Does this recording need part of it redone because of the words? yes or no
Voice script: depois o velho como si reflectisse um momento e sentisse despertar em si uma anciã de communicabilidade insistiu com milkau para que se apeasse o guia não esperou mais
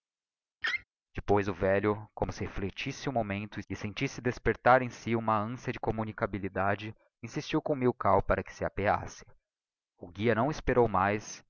no